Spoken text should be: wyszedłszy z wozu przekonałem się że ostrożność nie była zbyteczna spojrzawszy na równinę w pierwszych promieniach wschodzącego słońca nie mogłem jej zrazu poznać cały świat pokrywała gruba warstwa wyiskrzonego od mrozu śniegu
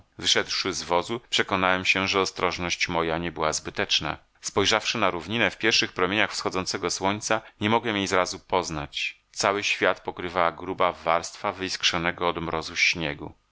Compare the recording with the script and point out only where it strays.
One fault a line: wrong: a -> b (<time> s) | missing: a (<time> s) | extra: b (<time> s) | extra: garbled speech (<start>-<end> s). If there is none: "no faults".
extra: moja (2.9 s)